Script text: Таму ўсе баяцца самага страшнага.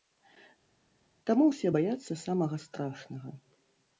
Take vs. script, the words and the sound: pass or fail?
pass